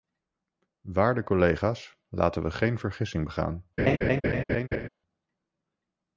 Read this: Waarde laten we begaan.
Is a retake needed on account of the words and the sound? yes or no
yes